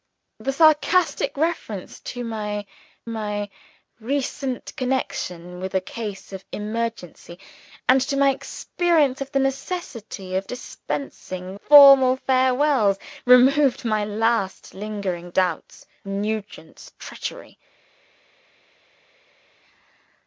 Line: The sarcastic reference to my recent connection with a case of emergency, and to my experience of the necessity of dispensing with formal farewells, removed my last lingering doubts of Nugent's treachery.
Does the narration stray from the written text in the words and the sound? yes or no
yes